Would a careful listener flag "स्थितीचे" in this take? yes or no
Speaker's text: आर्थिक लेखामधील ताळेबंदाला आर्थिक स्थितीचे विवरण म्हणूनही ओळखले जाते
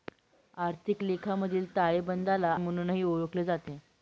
yes